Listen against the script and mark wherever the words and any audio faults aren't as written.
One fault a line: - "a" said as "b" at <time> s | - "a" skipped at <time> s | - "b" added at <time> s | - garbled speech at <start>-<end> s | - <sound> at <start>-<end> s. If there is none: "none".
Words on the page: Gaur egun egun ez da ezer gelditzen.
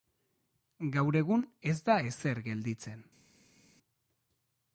- "egun" skipped at 1.4 s